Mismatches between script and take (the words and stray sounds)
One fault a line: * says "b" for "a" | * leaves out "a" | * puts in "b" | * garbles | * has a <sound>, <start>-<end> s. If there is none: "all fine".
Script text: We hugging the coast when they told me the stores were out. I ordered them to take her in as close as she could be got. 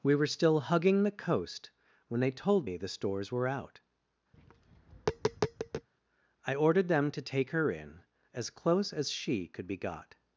* puts in "were still"
* has a tap, 4.3-5.9 s